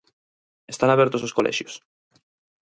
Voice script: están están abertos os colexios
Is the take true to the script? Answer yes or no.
no